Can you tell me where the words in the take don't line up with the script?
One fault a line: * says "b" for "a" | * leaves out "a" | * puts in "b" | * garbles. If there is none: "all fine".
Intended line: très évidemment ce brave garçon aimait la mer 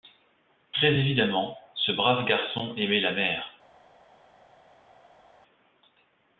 all fine